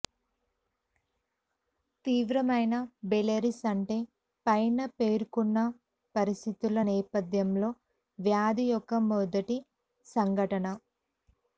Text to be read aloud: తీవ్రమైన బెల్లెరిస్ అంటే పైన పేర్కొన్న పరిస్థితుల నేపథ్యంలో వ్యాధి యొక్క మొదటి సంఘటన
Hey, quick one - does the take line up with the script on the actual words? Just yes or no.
yes